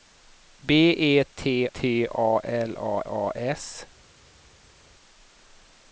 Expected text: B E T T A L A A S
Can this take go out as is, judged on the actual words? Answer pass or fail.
pass